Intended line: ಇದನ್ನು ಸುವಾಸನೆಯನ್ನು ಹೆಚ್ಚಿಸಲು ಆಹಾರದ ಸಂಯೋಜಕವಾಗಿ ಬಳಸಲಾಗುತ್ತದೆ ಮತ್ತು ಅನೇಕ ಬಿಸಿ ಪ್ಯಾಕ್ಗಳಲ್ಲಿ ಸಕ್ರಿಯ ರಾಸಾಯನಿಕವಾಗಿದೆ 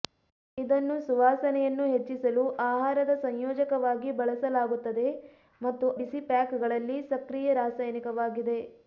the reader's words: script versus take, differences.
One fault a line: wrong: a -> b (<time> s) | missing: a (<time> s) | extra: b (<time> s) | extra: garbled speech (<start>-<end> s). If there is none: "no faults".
missing: ಅನೇಕ (5.9 s)